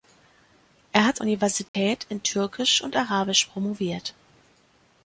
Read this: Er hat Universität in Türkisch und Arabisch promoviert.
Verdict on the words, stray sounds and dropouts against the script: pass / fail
fail